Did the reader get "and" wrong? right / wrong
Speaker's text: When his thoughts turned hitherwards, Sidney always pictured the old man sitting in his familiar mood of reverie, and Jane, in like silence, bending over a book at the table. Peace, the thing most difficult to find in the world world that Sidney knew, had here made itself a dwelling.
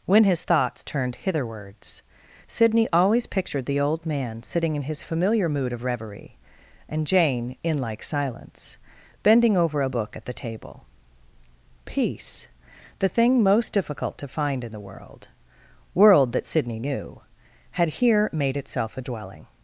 right